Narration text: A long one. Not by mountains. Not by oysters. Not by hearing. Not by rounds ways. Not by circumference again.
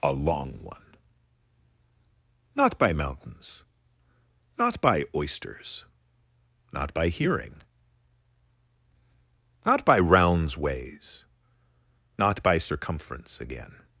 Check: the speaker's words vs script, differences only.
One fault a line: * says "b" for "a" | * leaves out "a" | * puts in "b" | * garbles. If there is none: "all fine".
all fine